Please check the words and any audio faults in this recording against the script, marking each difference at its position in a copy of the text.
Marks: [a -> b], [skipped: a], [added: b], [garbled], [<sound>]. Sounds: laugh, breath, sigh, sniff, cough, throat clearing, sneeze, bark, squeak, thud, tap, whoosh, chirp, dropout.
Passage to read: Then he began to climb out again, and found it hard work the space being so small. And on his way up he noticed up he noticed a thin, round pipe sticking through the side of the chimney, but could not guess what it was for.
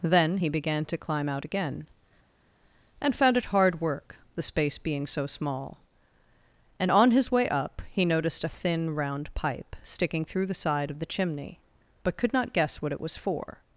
Then he began to climb out again, and found it hard work the space being so small. And on his way up he noticed [skipped: up he noticed] a thin, round pipe sticking through the side of the chimney, but could not guess what it was for.